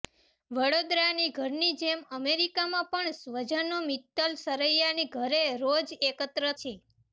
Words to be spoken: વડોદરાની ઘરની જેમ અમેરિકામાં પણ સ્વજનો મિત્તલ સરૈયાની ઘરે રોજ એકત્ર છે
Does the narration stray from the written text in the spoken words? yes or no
no